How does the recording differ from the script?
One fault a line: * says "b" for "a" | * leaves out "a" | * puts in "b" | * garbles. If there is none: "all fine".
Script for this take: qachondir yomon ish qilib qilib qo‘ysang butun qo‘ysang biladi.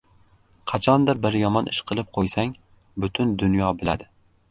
* puts in "bir"
* leaves out "qilib"
* says "dunyo" for "qo‘ysang"